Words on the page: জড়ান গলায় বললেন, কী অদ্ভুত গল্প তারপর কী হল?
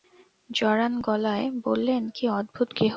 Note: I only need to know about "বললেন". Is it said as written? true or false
true